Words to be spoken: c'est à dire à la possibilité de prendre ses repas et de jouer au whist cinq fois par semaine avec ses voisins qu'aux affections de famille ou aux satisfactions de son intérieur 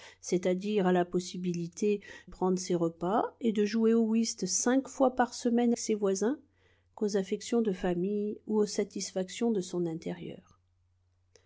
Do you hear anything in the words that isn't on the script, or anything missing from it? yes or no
yes